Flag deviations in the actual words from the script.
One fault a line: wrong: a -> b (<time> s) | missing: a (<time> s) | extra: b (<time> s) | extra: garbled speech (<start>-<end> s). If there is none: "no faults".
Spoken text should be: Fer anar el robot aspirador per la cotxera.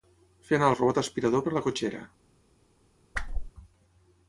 no faults